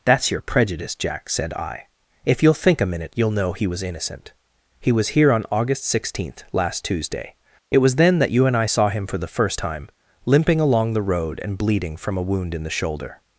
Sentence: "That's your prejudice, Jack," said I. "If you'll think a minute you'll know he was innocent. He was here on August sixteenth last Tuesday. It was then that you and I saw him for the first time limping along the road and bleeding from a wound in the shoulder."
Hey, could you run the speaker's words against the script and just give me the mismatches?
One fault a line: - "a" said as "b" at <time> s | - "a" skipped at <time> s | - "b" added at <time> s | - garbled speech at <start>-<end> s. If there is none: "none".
none